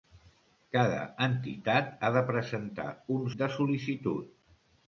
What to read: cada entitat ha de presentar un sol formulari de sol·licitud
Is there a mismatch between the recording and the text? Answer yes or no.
yes